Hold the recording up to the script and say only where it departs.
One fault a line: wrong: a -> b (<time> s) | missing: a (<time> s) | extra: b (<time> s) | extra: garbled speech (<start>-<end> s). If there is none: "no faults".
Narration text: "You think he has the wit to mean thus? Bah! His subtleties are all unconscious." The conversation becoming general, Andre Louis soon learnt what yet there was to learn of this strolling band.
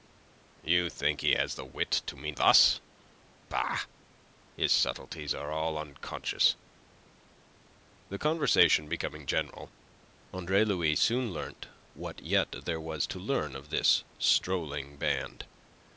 no faults